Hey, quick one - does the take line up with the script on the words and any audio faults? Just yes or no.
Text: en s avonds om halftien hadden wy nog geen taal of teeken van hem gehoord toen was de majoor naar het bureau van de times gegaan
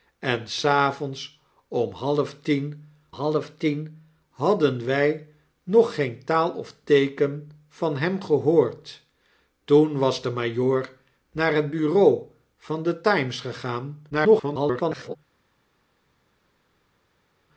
no